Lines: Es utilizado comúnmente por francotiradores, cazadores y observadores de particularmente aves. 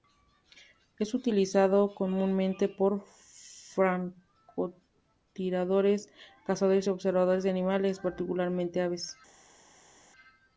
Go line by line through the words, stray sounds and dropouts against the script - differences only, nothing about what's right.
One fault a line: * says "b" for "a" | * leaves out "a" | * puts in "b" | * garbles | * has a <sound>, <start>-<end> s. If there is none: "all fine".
* puts in "animales"